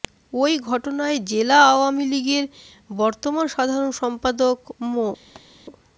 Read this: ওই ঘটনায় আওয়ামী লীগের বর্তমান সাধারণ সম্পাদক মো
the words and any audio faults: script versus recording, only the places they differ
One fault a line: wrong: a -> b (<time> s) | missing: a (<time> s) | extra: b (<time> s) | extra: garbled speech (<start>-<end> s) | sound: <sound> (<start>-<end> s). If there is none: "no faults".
extra: জেলা (1.3 s)
sound: thud (5.4-5.5 s)